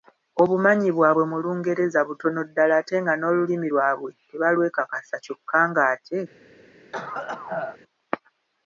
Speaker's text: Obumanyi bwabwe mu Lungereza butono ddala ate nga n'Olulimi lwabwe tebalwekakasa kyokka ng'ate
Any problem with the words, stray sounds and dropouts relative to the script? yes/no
yes